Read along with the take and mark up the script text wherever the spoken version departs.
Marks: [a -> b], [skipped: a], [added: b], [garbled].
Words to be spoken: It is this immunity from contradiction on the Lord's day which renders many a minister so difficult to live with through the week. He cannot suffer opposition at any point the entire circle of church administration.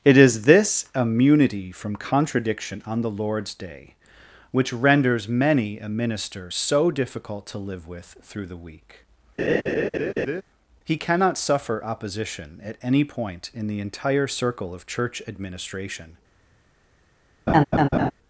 It is this immunity from contradiction on the Lord's day which renders many a minister so difficult to live with through the week. He cannot suffer opposition at any point [added: in] the entire circle of church administration.